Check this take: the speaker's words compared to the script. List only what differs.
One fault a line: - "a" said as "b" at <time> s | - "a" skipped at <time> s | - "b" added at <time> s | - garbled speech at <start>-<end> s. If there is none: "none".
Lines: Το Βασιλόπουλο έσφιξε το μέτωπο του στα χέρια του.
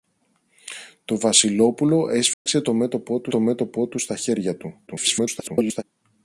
- "το μέτωπο του" added at 3.3 s
- garbled speech at 4.9-5.8 s